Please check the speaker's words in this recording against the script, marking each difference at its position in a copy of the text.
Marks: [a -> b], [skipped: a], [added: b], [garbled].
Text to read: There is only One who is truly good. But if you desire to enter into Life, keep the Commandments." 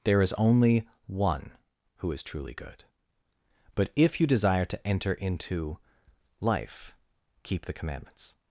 There is only One who is truly good. But if you desire to enter into Life, keep the Commandments."